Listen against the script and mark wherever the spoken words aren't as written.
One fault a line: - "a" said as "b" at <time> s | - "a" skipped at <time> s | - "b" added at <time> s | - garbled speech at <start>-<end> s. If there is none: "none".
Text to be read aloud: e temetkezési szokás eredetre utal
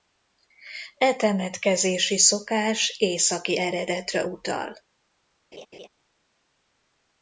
- "északi" added at 3.0 s